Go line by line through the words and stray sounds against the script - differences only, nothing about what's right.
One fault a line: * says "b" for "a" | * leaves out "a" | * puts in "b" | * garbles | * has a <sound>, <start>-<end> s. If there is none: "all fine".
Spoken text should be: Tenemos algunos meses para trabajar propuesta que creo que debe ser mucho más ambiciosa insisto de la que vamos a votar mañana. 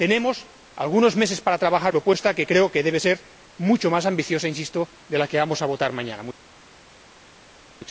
all fine